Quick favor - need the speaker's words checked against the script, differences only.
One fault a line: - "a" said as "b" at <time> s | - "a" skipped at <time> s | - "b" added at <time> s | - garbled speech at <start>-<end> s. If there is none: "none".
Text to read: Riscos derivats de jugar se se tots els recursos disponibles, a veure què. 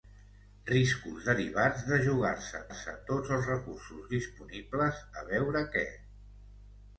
none